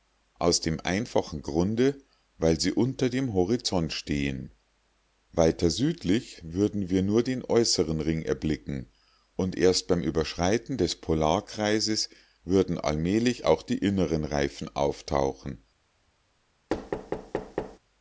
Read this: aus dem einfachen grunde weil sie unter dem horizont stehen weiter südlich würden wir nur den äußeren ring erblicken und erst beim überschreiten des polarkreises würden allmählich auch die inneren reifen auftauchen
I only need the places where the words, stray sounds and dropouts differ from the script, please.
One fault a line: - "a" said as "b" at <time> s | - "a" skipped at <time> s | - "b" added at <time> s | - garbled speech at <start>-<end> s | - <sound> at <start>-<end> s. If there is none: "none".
- thud at 16.7-17.8 s